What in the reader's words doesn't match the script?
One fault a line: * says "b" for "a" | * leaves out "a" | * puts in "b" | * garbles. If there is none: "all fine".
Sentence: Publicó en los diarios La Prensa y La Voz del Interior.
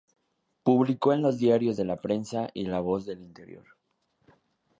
all fine